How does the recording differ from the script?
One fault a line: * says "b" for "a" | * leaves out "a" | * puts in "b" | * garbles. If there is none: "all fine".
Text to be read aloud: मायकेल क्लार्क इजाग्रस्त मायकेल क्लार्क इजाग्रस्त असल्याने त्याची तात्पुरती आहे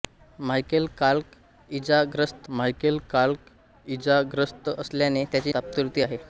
all fine